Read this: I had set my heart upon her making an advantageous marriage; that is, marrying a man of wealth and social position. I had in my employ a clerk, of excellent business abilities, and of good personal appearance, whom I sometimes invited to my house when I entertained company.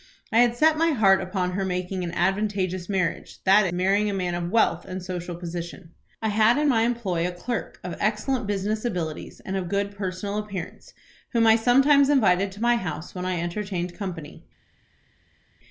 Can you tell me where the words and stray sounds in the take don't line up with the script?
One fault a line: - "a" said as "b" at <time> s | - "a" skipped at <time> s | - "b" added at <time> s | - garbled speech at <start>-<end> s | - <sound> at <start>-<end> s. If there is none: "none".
- "is" skipped at 3.7 s